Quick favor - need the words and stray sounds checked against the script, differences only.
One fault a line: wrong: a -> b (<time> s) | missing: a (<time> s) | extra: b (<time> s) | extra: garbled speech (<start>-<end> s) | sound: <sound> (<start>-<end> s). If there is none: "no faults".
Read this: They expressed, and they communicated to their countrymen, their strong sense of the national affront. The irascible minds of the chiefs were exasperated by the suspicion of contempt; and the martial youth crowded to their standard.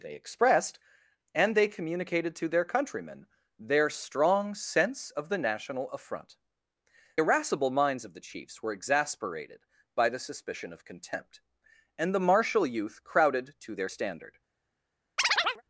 missing: The (6.4 s)
sound: chirp (15.2-15.6 s)